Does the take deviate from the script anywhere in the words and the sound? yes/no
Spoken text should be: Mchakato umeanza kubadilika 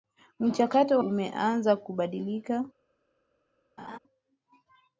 yes